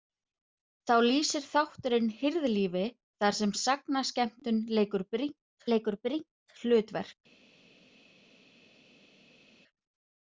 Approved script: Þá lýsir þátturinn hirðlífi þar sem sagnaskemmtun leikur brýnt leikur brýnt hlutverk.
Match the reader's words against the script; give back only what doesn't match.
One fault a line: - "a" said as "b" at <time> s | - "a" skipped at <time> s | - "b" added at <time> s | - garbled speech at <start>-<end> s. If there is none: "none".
none